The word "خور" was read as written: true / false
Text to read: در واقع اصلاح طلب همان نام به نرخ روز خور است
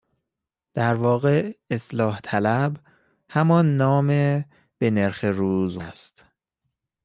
false